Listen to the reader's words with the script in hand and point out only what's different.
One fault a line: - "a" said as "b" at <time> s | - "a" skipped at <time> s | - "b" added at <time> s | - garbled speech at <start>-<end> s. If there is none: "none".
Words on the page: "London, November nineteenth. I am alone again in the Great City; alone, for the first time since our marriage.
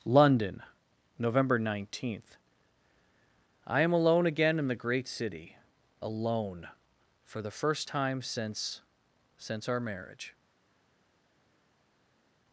- "since" added at 9.4 s